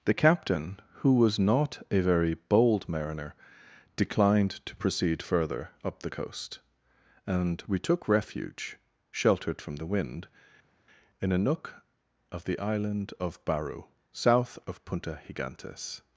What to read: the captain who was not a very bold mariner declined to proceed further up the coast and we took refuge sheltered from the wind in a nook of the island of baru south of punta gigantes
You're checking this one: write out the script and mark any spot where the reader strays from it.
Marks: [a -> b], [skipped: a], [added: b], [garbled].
the captain who was not a very bold mariner declined to proceed further up the coast and we took refuge sheltered from the wind in a nook of the island of baru south of punta gigantes